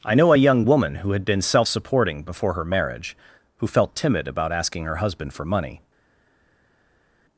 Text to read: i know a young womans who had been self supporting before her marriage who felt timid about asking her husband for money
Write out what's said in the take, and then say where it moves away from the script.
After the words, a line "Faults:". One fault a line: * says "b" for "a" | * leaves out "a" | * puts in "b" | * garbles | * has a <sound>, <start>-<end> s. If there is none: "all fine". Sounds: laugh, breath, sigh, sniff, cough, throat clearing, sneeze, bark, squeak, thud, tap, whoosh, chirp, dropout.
i know a young woman who had been self supporting before her marriage who felt timid about asking her husband for money
Faults:
* says "woman" for "womans"